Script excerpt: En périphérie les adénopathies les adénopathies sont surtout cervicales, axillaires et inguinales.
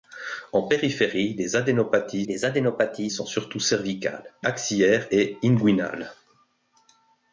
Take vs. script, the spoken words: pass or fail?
pass